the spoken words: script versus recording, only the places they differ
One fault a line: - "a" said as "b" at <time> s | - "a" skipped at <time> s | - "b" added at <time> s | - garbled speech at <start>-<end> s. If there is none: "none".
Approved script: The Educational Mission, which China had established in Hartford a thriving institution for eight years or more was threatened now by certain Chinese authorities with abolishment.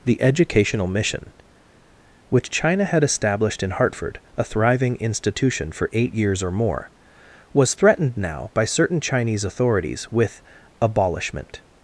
none